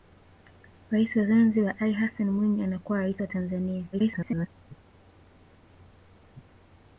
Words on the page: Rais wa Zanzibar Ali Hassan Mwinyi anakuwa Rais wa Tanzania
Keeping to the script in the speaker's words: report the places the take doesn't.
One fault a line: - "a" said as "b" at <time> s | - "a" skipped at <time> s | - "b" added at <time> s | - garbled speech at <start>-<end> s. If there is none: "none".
- garbled speech at 3.9-4.5 s